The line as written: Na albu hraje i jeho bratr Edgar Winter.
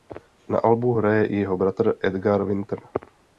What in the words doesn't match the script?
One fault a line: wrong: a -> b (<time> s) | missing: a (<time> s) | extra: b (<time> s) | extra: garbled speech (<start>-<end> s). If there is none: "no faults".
no faults